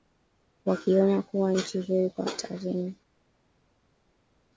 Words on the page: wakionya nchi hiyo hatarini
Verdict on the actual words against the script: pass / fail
fail